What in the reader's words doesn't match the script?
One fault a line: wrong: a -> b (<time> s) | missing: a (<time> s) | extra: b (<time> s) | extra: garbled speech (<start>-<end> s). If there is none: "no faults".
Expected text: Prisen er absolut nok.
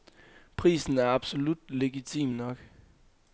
extra: legitim (1.7 s)